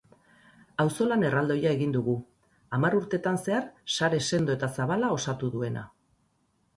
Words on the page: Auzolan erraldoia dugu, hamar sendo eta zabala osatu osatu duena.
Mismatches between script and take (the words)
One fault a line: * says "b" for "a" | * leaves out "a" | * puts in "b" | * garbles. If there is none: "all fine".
* puts in "egin"
* puts in "urtetan zehar sare"
* leaves out "osatu"